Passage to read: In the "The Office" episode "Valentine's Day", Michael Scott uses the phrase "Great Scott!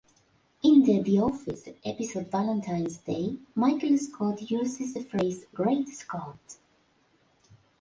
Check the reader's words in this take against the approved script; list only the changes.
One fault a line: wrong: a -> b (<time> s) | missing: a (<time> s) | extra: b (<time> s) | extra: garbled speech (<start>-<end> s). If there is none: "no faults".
no faults